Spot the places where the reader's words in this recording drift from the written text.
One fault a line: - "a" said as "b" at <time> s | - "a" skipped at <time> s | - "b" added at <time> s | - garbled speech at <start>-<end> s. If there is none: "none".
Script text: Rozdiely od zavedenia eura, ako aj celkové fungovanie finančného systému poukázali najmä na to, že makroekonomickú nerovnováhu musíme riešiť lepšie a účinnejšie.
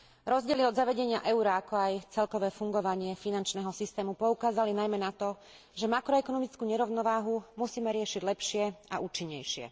none